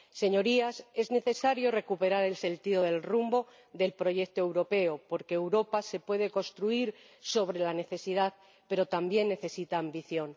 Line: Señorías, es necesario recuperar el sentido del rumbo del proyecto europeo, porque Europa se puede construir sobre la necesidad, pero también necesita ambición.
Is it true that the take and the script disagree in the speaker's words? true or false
false